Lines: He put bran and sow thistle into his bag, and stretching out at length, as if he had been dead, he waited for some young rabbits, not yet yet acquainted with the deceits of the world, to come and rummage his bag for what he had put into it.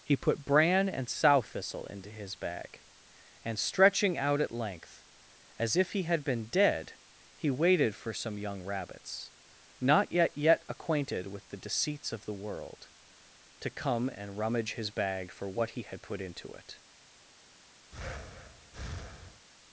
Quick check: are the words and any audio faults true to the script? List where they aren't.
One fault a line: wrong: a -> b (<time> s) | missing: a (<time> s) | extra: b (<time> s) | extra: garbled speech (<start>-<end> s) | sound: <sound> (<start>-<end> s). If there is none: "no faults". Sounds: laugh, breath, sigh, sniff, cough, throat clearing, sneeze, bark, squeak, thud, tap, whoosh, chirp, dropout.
sound: breath (17.9-19.4 s)